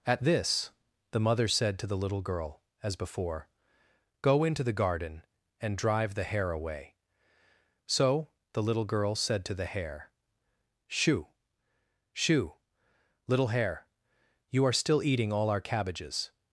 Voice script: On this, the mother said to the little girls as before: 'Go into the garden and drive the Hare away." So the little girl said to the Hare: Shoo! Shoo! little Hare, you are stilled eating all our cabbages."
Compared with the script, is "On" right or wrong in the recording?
wrong